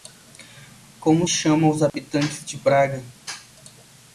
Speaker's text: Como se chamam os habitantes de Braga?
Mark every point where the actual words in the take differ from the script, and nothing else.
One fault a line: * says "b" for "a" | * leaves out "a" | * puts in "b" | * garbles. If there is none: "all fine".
* leaves out "se"